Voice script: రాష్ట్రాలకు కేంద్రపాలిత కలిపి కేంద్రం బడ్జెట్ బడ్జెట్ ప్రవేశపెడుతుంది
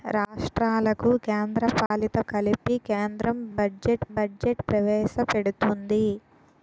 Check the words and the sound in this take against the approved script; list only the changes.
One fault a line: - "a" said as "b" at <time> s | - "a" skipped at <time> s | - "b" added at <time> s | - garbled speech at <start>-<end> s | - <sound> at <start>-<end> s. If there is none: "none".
- dropout at 1.9-1.9 s